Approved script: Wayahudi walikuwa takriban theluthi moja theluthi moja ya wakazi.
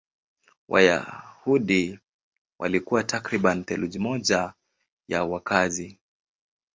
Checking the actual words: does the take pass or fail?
fail